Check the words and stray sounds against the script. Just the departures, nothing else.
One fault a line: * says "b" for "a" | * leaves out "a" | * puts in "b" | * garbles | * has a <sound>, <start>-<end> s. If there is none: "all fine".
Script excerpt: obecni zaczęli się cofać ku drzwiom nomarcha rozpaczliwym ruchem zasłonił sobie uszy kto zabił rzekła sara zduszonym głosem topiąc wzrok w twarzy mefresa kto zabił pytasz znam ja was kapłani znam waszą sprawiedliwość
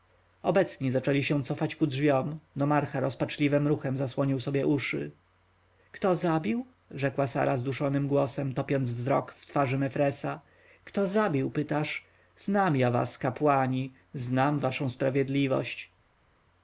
all fine